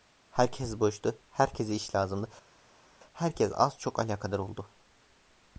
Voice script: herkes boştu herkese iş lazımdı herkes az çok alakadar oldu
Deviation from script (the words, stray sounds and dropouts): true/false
false